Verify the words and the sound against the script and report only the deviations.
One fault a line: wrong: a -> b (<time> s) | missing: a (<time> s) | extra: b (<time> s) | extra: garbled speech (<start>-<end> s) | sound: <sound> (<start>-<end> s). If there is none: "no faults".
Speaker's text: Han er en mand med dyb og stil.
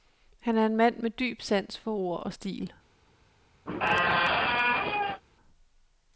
extra: sans for ord (1.4 s)
sound: squeak (3.7-5.2 s)